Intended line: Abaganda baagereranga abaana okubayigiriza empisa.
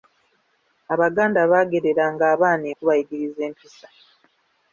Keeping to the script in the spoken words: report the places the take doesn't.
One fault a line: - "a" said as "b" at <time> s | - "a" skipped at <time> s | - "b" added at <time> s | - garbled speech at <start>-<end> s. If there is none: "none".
none